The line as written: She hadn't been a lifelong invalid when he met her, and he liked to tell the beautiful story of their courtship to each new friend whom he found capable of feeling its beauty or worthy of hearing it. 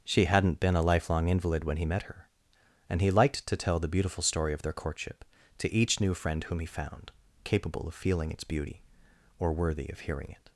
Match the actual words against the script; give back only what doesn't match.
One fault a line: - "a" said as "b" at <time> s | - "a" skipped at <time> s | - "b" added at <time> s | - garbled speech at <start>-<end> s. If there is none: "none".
none